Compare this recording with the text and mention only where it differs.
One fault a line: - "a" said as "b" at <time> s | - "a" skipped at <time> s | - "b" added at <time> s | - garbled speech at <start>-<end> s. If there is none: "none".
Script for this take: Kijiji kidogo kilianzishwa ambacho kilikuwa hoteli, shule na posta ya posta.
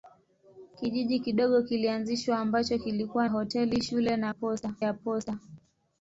none